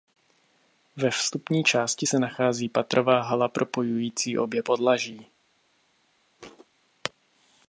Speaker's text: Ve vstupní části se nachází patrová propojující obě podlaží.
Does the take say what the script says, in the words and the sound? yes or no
no